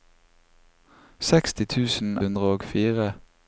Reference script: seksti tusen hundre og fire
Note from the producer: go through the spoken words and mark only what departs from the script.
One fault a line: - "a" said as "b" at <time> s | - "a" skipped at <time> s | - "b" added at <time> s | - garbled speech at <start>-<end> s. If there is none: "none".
none